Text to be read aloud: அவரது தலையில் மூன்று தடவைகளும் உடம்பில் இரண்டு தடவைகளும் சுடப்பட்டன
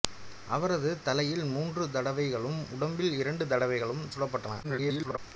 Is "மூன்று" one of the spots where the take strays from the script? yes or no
no